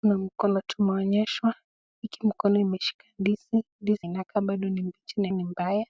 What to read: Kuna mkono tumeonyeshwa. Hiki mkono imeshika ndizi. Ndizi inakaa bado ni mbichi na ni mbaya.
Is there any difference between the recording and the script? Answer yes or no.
no